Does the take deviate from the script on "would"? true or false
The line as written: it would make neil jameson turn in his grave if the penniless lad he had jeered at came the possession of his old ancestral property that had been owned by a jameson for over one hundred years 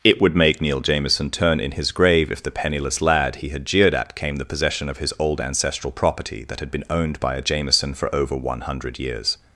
false